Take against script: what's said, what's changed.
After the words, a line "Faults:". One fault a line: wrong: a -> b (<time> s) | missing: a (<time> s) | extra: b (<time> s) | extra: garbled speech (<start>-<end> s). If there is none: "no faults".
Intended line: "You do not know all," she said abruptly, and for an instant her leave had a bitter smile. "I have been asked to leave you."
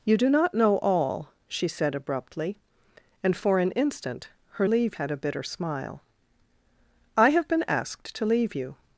"You do not know all," she said abruptly, and for an instant her leave had a bitter smile. "I have been asked to leave you."
Faults:
no faults